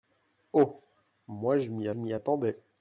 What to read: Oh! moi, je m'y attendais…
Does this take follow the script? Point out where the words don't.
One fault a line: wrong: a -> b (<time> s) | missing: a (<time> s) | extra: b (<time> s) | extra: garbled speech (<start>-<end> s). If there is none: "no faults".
extra: m'y (1.9 s)